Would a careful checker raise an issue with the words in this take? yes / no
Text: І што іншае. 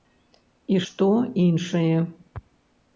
no